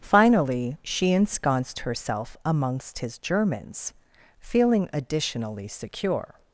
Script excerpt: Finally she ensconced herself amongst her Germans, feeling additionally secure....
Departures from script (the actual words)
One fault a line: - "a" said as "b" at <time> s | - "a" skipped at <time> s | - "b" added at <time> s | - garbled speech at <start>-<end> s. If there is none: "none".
- "her" said as "his" at 3.0 s